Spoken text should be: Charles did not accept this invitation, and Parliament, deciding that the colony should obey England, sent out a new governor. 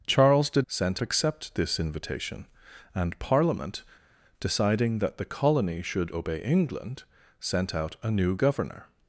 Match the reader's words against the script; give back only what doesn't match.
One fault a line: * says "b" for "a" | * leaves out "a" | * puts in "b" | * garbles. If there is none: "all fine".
* says "sent" for "not"